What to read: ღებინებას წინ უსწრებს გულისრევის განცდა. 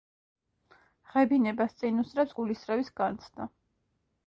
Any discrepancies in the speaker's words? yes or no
no